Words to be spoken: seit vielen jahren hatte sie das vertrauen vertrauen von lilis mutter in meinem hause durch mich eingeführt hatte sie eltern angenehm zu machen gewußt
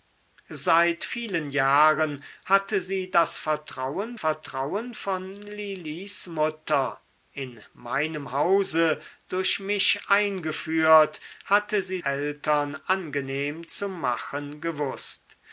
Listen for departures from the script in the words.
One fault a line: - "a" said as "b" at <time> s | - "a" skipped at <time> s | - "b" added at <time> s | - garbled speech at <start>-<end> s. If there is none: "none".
none